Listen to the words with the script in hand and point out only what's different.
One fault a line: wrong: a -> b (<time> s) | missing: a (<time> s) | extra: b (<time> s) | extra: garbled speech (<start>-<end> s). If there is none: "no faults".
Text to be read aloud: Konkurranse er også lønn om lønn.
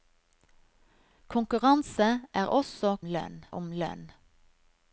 no faults